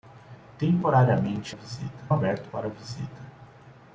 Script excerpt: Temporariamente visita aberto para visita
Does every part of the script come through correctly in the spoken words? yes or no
yes